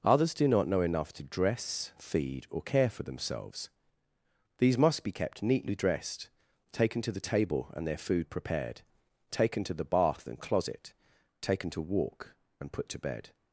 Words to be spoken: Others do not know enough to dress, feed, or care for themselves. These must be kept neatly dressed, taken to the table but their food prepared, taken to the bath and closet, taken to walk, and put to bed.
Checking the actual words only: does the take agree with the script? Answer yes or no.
no